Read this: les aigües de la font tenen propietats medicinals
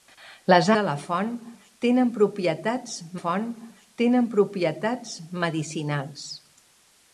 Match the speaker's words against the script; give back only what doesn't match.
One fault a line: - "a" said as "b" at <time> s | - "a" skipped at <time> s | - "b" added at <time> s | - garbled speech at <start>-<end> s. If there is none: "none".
- "aigües" skipped at 0.7 s
- "font tenen propietats" added at 3.2 s